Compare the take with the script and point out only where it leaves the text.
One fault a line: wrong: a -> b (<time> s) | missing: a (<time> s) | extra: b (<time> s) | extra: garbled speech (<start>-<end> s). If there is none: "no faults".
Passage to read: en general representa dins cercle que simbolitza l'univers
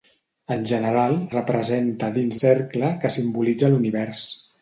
no faults